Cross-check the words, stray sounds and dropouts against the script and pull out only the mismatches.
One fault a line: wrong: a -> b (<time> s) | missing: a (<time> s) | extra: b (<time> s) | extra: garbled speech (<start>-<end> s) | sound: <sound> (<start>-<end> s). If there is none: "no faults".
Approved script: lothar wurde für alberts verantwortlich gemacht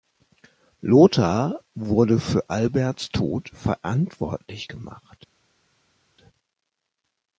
extra: tod (3.1 s)